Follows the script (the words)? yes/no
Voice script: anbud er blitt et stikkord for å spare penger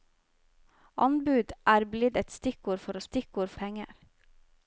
no